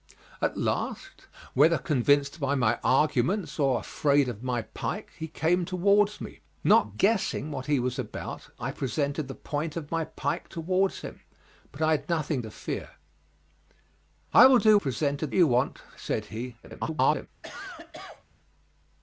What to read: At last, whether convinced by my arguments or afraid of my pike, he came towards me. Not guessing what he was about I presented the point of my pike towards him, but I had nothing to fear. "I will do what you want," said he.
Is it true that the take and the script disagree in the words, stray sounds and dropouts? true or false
true